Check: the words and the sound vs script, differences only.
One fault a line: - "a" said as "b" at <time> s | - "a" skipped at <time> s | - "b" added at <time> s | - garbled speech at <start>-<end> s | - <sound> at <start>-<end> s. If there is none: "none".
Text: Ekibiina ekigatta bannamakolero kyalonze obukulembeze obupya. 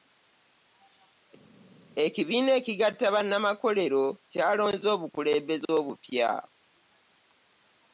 none